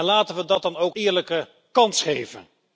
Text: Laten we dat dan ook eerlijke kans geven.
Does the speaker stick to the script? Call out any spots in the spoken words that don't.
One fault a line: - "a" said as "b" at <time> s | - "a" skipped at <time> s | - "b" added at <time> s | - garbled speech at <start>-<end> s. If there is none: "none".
none